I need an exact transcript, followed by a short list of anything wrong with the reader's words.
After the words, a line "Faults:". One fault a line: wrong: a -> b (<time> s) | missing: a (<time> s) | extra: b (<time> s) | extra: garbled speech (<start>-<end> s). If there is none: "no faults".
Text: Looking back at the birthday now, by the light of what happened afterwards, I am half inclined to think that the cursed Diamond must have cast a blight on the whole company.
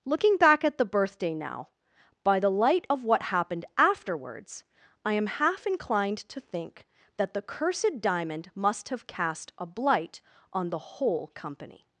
Looking back at the birthday now, by the light of what happened afterwards, I am half inclined to think that the cursed Diamond must have cast a blight on the whole company.
Faults:
no faults